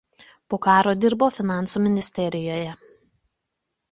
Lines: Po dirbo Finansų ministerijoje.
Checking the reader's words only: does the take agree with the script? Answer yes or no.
no